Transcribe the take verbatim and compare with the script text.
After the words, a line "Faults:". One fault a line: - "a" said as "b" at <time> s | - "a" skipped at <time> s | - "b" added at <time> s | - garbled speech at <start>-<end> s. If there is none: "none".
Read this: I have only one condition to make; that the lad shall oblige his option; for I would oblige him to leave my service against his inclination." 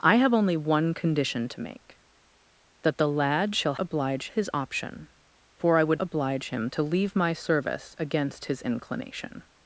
I have only one condition to make; that the lad shall oblige his option; for I would oblige him to leave my service against his inclination."
Faults:
none